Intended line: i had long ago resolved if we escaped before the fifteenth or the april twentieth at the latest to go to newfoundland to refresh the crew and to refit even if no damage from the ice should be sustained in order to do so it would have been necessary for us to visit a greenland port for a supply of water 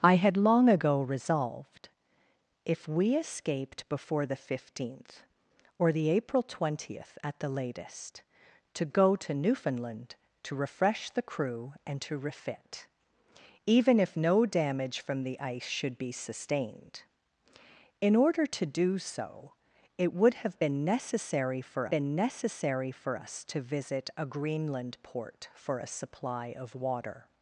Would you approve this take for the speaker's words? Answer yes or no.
no